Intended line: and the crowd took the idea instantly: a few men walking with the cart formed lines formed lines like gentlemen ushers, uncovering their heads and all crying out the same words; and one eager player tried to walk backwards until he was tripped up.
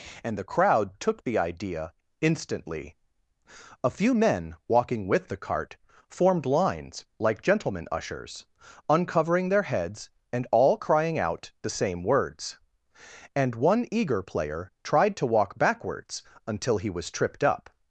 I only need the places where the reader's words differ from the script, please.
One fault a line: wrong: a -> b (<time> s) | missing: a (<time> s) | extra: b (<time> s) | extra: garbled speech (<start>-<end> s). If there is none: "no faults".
missing: formed lines (7.0 s)